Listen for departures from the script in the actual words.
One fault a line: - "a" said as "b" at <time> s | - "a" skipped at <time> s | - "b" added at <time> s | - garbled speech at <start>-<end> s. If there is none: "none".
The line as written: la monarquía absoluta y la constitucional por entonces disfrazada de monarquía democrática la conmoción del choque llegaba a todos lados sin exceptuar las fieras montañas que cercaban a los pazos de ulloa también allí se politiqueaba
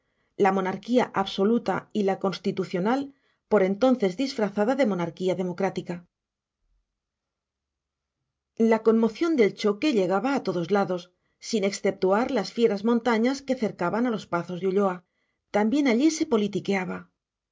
none